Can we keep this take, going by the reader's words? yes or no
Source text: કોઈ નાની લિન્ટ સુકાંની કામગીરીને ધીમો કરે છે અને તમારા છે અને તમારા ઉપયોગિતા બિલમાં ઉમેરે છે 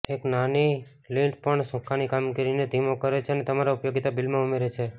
no